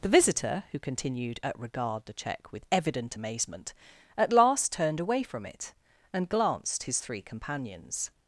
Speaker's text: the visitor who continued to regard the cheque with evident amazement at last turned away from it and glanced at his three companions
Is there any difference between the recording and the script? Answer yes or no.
yes